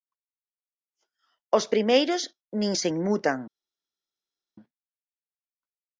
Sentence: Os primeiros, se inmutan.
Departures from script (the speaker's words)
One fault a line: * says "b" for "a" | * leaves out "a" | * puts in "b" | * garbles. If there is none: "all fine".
* puts in "nin"